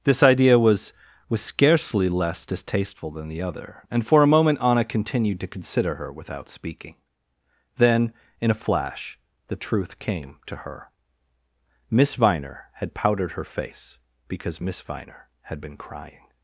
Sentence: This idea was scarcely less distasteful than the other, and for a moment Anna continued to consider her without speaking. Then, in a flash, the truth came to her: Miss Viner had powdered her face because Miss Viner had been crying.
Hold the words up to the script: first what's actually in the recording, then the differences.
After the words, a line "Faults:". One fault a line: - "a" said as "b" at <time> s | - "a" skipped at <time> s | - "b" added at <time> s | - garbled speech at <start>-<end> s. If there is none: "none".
This idea was was scarcely less distasteful than the other, and for a moment Anna continued to consider her without speaking. Then, in a flash, the truth came to her: Miss Viner had powdered her face because Miss Viner had been crying.
Faults:
- "was" added at 1.3 s